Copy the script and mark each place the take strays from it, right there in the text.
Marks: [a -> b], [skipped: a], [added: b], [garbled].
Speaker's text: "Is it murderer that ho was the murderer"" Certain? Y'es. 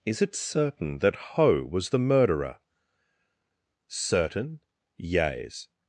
"Is it [murderer -> certain] that ho was the murderer"" Certain? Y'es.